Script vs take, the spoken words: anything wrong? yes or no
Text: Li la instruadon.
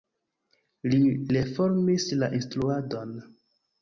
yes